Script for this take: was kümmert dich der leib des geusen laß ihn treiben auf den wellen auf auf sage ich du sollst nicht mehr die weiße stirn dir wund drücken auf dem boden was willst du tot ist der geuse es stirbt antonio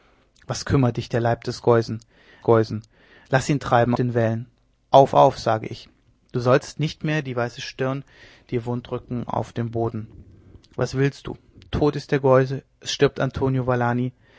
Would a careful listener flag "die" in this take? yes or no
no